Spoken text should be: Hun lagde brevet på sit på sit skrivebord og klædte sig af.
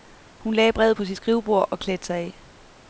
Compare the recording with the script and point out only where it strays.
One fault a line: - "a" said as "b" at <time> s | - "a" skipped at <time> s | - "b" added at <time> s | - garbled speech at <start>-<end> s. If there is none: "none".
- "på sit" skipped at 1.2 s